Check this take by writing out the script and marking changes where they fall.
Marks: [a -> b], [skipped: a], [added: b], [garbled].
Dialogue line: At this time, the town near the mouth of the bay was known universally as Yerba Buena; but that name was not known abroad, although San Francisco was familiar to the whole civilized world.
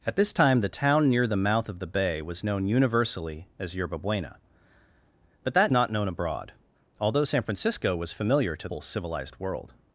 At this time, the town near the mouth of the bay was known universally as Yerba Buena; but that [skipped: name was] not known abroad, although San Francisco was familiar to [skipped: the] whole civilized world.